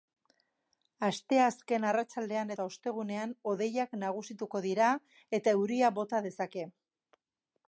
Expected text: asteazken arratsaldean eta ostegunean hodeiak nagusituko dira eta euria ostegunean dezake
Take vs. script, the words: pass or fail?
fail